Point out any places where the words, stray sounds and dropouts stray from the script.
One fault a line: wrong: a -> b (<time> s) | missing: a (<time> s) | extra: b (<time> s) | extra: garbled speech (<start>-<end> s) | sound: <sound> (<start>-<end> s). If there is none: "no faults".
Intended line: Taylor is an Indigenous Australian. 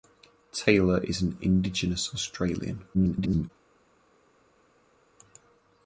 extra: garbled speech (2.9-3.5 s)